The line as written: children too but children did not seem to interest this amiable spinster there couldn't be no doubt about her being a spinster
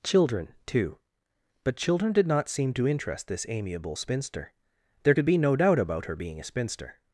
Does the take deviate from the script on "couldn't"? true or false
true